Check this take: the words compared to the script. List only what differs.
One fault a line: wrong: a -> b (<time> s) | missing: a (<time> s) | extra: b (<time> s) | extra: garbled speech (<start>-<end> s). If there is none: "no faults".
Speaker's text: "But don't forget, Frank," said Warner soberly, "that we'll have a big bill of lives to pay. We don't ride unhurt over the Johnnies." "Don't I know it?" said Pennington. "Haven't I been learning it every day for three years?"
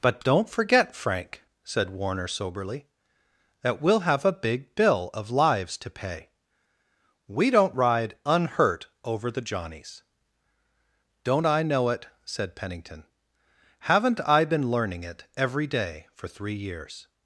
no faults